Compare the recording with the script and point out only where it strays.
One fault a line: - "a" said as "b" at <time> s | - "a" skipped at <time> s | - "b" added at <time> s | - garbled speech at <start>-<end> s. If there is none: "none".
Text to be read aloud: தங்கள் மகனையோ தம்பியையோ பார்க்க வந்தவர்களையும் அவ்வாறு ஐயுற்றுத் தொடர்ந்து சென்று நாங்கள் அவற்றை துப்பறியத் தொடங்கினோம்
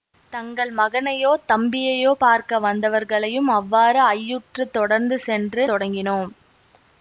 - "நாங்கள் அவற்றை துப்பறியத்" skipped at 5.6 s